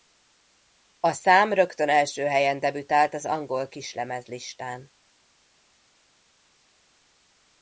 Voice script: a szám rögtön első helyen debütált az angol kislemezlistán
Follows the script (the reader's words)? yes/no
yes